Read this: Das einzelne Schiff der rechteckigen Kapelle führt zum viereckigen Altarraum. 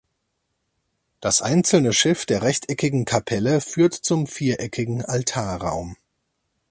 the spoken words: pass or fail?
pass